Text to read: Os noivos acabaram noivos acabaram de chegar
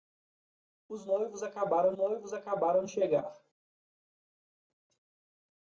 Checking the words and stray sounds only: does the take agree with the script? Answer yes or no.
yes